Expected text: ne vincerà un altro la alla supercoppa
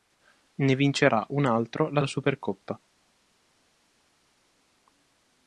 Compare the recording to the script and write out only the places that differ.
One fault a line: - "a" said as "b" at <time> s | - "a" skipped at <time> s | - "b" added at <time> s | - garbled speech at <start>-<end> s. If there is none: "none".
none